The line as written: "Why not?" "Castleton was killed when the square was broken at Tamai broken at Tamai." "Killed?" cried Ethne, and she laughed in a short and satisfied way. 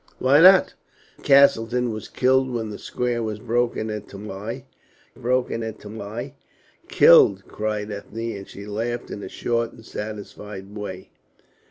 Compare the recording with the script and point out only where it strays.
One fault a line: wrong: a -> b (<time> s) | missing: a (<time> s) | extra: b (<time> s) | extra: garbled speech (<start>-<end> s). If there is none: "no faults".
no faults